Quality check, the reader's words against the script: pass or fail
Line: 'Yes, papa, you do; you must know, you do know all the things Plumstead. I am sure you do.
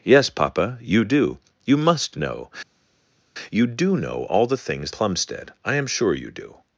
pass